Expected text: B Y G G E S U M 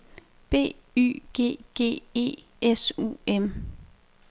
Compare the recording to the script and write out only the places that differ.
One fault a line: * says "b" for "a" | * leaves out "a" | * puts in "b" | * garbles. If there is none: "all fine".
all fine